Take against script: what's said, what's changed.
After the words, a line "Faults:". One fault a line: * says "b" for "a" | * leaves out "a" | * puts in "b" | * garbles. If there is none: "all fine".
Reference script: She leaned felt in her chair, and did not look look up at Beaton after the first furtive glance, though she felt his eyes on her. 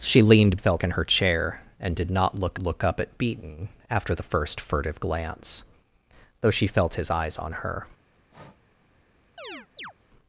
She leaned felt in her chair, and did not look look up at Beaton after the first furtive glance, though she felt his eyes on her.
Faults:
all fine